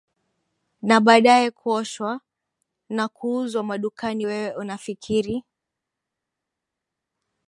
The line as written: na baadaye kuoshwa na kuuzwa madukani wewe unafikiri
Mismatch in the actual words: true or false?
false